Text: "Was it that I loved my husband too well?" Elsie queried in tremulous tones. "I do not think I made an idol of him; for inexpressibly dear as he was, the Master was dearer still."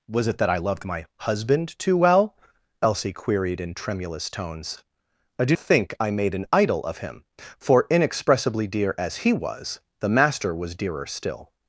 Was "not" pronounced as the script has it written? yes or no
no